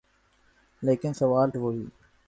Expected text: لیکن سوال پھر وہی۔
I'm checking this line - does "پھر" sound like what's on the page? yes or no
no